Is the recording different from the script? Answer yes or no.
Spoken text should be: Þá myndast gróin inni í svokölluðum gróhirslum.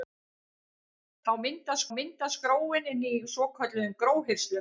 yes